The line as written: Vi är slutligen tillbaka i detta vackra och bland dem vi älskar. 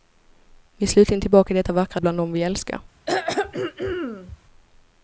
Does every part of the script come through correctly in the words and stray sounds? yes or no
no